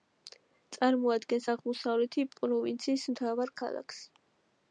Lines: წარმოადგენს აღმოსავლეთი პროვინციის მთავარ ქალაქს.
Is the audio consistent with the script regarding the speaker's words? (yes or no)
yes